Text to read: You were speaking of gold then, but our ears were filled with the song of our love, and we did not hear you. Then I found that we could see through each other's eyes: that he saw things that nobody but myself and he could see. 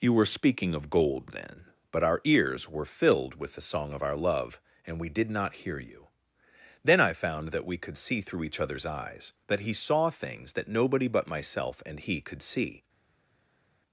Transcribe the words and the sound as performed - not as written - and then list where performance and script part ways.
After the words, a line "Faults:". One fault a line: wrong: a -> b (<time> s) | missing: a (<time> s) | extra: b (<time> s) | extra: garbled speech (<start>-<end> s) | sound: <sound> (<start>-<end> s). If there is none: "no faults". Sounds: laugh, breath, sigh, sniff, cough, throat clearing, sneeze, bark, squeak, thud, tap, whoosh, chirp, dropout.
You were speaking of gold then, but our ears were filled with the song of our love, and we did not hear you. Then I found that we could see through each other's eyes: that he saw things that nobody but myself and he could see.
Faults:
no faults